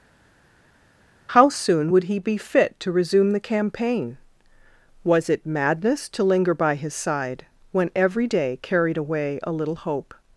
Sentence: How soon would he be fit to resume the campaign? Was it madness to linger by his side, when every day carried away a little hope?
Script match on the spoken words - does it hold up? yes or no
yes